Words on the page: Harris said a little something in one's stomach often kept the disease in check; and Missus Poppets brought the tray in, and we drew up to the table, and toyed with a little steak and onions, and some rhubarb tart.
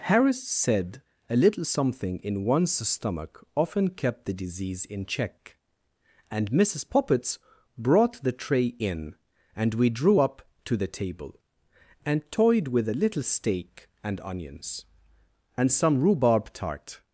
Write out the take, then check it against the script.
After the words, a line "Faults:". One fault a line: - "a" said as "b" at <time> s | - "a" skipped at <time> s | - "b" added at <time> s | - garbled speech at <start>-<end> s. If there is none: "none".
Harris said a little something in one's stomach often kept the disease in check; and Missus Poppets brought the tray in, and we drew up to the table, and toyed with a little steak and onions, and some rhubarb tart.
Faults:
none